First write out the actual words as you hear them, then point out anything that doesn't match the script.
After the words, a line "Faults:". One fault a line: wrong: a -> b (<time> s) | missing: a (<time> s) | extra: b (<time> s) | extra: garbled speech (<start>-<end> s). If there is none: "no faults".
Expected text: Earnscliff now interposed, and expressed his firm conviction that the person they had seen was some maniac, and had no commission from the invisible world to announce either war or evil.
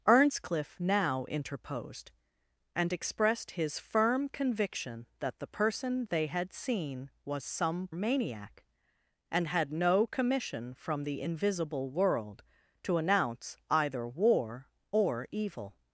Earnscliff now interposed, and expressed his firm conviction that the person they had seen was some maniac, and had no commission from the invisible world to announce either war or evil.
Faults:
no faults